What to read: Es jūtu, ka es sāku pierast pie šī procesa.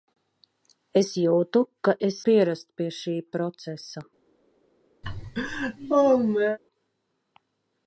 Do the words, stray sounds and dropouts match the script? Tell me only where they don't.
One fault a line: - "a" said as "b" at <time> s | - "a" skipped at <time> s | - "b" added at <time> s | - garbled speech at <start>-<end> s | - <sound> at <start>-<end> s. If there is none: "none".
- "sāku" skipped at 2.2 s
- laugh at 5.0-6.6 s